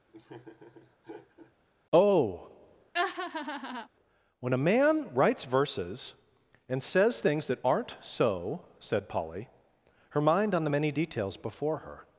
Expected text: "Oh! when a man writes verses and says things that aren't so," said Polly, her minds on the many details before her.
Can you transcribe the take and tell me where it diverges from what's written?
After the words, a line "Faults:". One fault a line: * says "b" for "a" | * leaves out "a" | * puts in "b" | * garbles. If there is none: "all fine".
"Oh! when a man writes verses and says things that aren't so," said Polly, her mind on the many details before her.
Faults:
* says "mind" for "minds"